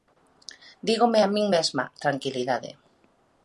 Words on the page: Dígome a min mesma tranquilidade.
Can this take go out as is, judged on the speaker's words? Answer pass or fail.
pass